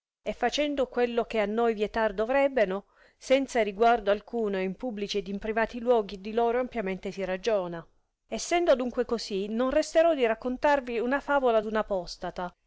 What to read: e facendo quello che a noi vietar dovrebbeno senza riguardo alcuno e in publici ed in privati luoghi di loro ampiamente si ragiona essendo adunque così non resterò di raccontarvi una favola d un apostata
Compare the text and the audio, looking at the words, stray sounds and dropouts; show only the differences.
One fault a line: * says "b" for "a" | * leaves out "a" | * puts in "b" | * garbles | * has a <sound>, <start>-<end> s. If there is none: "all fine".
all fine